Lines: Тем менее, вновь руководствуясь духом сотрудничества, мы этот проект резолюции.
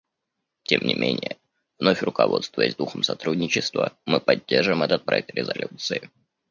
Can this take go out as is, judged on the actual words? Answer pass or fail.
fail